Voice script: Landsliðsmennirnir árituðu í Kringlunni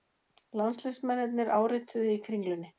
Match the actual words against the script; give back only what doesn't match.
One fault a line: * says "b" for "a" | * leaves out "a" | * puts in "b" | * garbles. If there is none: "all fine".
all fine